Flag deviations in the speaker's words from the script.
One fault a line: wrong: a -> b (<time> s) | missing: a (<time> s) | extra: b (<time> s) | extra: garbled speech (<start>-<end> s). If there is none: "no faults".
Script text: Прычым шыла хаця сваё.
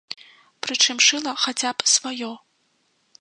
extra: б (1.8 s)